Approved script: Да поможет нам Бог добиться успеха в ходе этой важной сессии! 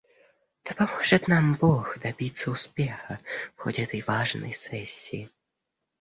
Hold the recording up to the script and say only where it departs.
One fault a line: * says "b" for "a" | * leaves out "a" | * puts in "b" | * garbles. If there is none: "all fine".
all fine